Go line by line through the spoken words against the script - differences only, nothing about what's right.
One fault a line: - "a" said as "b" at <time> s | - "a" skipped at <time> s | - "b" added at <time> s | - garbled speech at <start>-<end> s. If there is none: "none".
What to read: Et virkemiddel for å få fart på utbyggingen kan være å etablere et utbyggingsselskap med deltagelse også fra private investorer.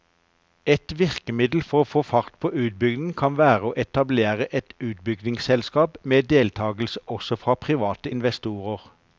none